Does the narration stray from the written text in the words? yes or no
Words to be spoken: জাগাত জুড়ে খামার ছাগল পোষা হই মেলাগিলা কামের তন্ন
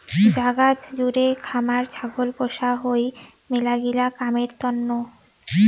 no